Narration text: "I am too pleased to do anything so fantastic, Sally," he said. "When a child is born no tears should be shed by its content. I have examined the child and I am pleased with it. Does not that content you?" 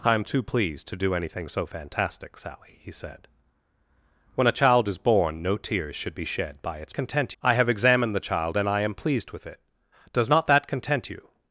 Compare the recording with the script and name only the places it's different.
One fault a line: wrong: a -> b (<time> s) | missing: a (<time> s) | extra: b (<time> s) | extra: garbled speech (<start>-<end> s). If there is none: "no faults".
no faults